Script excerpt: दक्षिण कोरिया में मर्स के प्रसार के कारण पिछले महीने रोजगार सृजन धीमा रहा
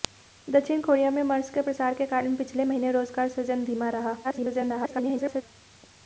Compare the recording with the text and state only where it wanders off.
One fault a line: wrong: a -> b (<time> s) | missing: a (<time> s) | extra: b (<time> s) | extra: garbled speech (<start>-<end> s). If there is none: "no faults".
extra: garbled speech (4.2-5.4 s)